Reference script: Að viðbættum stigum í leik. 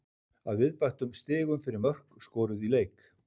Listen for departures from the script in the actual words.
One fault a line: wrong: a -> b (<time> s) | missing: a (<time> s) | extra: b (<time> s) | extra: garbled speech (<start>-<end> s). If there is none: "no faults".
extra: fyrir mörk skoruð (1.7 s)